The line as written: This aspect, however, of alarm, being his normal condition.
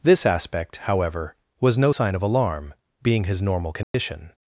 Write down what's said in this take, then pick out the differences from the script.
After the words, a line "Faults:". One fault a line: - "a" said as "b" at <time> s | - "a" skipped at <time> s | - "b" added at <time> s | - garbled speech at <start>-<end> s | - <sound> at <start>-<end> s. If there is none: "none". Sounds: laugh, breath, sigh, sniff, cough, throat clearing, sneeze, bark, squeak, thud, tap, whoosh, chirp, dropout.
This aspect, however, was no sign of alarm, being his normal condition.
Faults:
- "was no sign" added at 1.6 s
- dropout at 3.8-3.9 s